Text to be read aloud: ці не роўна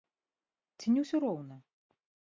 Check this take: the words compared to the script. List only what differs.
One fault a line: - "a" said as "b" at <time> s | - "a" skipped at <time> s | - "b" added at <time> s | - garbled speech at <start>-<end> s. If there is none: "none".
- "ўсё" added at 1.0 s